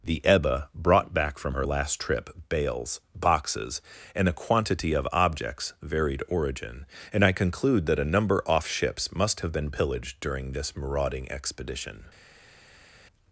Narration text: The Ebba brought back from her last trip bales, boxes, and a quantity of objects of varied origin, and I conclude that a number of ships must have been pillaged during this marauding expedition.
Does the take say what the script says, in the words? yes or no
no